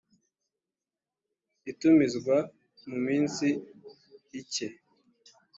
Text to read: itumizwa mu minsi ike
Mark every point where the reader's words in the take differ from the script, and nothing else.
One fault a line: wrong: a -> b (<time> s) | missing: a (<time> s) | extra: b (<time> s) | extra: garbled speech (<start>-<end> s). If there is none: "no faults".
no faults